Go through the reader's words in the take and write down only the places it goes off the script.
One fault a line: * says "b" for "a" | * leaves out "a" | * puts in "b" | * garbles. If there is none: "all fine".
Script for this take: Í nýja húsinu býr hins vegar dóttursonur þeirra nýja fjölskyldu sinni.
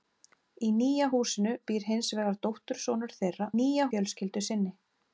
all fine